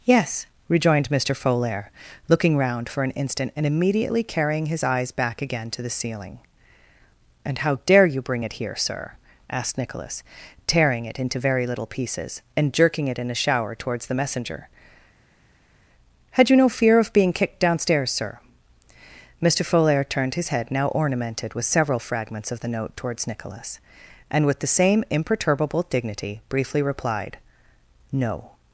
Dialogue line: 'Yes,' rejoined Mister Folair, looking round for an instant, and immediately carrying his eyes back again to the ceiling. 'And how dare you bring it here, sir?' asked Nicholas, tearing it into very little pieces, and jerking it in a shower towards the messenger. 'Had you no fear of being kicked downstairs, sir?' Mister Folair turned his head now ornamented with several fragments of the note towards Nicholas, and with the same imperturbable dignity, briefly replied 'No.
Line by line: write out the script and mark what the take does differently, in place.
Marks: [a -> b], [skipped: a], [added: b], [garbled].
'Yes,' rejoined Mister Folair, looking round for an instant, and immediately carrying his eyes back again to the ceiling. 'And how dare you bring it here, sir?' asked Nicholas, tearing it into very little pieces, and jerking it in a shower towards the messenger. 'Had you no fear of being kicked downstairs, sir?' Mister Folair turned his head now ornamented with several fragments of the note towards Nicholas, and with the same imperturbable dignity, briefly replied 'No.